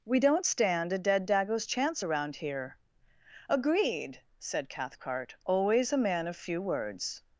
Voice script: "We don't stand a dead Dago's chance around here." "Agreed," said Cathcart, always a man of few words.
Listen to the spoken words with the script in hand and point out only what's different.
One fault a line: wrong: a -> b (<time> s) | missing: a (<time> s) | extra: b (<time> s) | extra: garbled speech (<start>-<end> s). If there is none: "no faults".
no faults